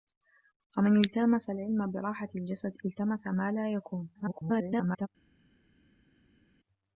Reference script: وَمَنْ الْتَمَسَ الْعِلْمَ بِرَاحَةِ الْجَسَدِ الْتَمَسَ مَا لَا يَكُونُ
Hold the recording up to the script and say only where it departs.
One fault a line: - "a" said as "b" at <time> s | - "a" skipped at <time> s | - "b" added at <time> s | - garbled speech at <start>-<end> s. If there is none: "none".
- garbled speech at 4.1-5.1 s